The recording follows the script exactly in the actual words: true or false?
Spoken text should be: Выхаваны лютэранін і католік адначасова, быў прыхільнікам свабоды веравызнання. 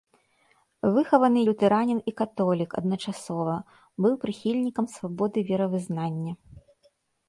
true